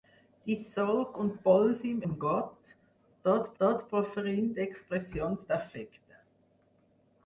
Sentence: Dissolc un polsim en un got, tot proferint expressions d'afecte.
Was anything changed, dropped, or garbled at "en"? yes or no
yes